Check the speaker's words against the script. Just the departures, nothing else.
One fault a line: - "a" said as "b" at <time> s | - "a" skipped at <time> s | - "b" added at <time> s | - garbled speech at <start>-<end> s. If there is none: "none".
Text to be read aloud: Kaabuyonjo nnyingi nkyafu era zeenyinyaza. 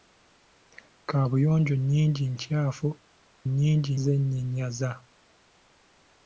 - "era" said as "nnyingi" at 3.5 s